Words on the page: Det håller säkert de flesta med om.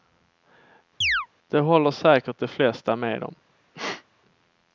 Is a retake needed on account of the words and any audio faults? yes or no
yes